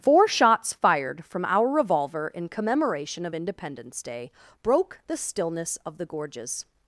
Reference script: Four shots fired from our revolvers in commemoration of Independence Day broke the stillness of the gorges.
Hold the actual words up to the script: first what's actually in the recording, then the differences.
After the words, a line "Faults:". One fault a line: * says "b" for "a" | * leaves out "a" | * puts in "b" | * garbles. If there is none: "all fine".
Four shots fired from our revolver in commemoration of Independence Day broke the stillness of the gorges.
Faults:
* says "revolver" for "revolvers"